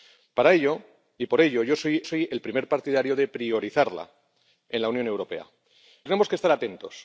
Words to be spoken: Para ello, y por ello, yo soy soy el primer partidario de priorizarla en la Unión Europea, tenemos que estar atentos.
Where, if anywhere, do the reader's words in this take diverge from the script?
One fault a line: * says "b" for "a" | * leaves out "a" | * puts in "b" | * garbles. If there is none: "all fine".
all fine